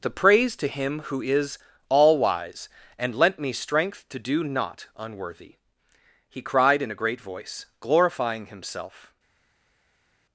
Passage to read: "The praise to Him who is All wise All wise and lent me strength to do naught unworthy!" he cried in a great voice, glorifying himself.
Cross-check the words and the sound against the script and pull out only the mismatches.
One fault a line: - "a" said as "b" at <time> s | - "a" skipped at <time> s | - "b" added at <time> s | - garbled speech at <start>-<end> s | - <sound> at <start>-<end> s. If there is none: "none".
- "All wise" skipped at 2.7 s